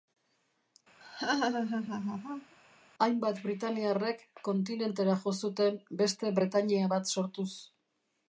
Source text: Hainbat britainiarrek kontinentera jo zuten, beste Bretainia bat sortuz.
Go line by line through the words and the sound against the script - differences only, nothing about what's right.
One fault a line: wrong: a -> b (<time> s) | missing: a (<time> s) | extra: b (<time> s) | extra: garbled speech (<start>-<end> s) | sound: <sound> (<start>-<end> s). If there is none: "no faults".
sound: laugh (1.0-2.6 s)